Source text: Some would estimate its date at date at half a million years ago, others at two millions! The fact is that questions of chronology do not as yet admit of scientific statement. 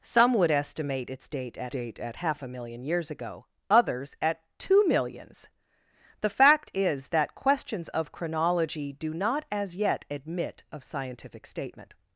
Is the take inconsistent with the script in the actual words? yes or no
no